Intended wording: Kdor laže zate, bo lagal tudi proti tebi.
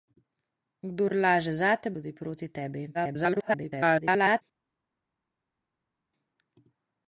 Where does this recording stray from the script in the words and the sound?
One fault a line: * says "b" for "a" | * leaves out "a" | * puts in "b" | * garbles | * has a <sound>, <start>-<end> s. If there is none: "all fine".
* leaves out "bo lagal"
* garbles